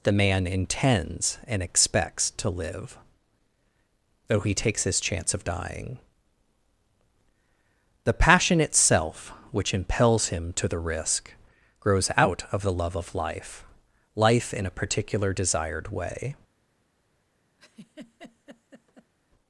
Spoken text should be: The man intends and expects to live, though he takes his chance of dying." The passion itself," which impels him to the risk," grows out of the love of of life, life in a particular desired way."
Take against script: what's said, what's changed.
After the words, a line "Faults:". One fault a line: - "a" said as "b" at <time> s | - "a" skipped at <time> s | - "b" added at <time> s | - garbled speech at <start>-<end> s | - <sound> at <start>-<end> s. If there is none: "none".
The man intends and expects to live, though he takes his chance of dying." The passion itself," which impels him to the risk," grows out of the love of life, life in a particular desired way."
Faults:
- "of" skipped at 13.1 s
- laugh at 17.6-19.1 s